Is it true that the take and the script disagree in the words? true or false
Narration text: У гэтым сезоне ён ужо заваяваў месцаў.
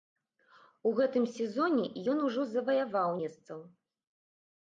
false